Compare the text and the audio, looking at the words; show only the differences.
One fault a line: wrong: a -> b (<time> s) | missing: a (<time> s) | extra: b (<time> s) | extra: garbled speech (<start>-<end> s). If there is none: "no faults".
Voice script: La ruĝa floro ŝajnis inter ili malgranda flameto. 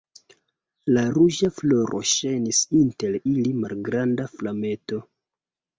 no faults